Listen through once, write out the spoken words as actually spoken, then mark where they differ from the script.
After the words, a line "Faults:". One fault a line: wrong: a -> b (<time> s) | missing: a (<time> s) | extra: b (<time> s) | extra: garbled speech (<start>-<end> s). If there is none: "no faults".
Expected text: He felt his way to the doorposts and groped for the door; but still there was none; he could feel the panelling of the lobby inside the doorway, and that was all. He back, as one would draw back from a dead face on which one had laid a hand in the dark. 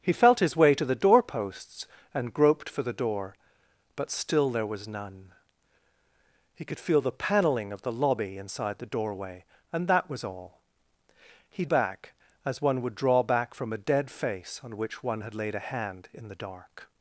He felt his way to the doorposts and groped for the door; but still there was none; he could feel the panelling of the lobby inside the doorway, and that was all. He back, as one would draw back from a dead face on which one had laid a hand in the dark.
Faults:
no faults